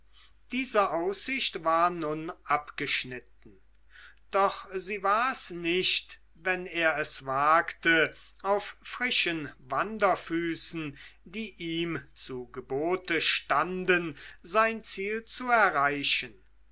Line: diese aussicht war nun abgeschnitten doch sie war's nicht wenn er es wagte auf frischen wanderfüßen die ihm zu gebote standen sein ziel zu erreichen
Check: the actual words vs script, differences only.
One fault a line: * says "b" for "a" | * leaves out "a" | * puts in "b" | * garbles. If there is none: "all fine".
all fine